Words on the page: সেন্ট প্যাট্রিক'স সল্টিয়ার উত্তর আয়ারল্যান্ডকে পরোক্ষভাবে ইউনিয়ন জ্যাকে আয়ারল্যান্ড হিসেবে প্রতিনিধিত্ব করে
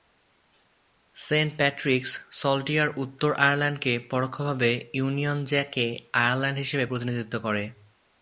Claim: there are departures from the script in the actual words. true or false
false